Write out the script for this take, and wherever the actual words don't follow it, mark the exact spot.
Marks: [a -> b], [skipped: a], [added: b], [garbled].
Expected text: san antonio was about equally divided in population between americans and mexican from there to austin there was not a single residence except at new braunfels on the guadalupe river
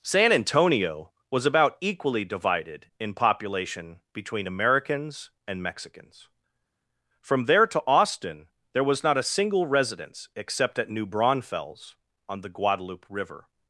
san antonio was about equally divided in population between americans and [mexican -> mexicans] from there to austin there was not a single residence except at new braunfels on the guadalupe river